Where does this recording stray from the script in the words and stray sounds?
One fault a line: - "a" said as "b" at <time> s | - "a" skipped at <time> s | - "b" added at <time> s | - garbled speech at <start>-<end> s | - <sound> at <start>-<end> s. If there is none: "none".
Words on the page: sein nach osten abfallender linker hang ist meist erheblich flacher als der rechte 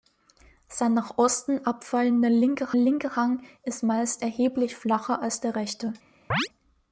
- "linker" added at 2.8 s
- chirp at 6.3-6.5 s